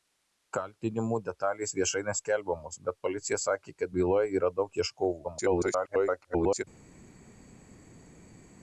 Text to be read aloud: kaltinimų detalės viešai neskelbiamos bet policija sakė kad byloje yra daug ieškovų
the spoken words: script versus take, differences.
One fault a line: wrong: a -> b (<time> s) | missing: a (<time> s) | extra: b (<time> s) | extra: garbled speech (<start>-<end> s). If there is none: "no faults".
extra: garbled speech (5.2-6.6 s)